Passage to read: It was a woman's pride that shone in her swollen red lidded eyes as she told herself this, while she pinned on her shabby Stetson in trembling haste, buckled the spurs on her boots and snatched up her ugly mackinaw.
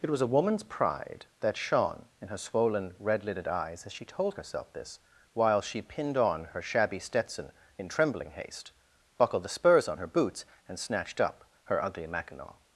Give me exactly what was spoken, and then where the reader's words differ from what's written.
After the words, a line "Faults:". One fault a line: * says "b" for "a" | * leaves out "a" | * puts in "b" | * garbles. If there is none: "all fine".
It was a woman's pride that shone in her swollen red lidded eyes as she told herself this, while she pinned on her shabby Stetson in trembling haste, buckled the spurs on her boots and snatched up her ugly mackinaw.
Faults:
all fine